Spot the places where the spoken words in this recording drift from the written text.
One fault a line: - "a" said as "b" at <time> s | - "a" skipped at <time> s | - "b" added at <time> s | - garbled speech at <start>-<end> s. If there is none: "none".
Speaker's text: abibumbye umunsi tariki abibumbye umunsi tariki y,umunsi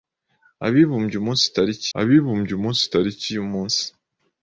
none